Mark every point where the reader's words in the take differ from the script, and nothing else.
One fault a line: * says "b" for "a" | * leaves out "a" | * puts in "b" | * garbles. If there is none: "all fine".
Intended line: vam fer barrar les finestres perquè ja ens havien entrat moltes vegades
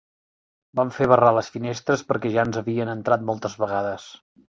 all fine